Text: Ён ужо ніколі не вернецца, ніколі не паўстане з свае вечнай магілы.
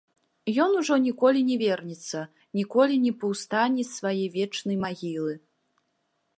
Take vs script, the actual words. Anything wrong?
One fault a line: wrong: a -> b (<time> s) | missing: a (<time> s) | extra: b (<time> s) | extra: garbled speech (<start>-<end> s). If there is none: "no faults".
no faults